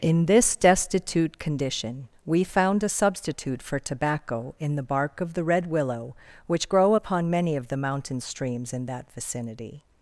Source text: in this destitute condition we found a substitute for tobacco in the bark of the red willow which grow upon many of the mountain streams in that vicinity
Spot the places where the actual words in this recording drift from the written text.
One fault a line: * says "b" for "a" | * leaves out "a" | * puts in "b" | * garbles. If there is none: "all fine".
all fine